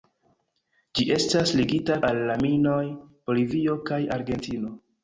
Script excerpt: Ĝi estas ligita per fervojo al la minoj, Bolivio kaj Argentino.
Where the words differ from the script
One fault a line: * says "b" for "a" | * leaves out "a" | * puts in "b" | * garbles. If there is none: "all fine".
* leaves out "per fervojo"